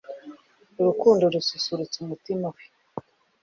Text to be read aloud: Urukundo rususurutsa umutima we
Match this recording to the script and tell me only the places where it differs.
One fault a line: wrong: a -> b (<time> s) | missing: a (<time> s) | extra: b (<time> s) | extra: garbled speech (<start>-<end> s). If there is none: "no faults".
no faults